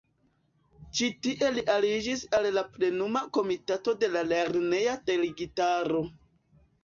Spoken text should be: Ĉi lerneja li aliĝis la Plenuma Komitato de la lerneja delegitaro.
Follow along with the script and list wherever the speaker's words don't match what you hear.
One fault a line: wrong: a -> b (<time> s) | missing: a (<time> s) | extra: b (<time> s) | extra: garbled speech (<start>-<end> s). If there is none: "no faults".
wrong: lerneja -> tie (1.2 s)
extra: al (2.4 s)